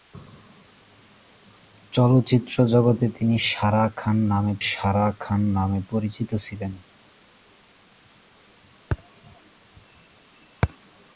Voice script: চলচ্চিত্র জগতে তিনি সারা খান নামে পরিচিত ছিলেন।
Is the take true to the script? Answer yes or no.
no